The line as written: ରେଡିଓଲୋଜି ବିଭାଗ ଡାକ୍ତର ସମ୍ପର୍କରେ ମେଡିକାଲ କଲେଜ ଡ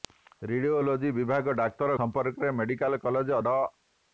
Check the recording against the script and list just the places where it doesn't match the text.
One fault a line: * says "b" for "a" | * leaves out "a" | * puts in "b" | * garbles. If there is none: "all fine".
all fine